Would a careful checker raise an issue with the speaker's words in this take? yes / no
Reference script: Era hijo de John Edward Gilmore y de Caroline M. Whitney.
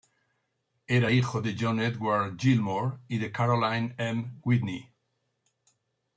no